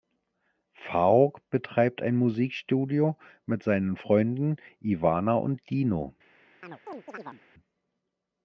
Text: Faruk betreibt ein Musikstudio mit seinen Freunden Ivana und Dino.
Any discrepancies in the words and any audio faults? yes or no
yes